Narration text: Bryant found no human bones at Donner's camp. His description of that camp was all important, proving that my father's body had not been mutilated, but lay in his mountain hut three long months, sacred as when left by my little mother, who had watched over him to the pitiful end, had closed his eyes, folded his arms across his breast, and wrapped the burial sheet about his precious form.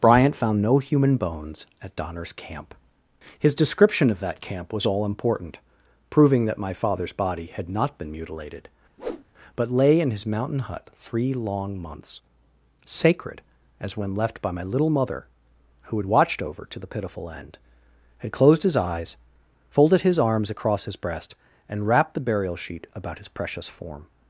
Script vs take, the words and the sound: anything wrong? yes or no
yes